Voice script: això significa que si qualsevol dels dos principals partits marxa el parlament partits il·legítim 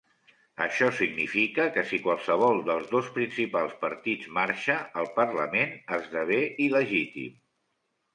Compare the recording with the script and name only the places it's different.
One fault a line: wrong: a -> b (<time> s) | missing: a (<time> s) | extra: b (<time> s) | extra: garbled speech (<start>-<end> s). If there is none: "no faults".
wrong: partits -> esdevé (6.0 s)